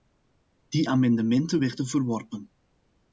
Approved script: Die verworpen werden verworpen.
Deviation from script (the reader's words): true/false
true